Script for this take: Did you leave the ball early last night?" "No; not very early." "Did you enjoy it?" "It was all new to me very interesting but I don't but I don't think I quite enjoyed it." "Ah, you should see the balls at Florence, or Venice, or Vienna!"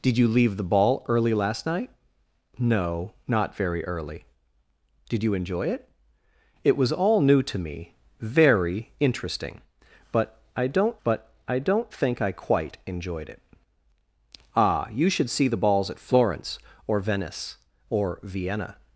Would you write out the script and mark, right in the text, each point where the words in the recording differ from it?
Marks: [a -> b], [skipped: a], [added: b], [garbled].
Did you leave the ball early last night?" "No; not very early." "Did you enjoy it?" "It was all new to me very interesting but I don't but I don't think I quite enjoyed it." "Ah, you should see the balls at Florence, or Venice, or Vienna!"